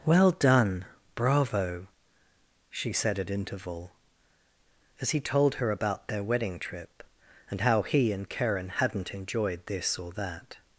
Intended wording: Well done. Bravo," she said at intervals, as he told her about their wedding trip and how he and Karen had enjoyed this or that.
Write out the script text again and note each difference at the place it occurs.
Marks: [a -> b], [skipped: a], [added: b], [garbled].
Well done. Bravo," she said at [intervals, -> interval] as he told her about their wedding trip and how he and Karen [had -> hadn't] enjoyed this or that.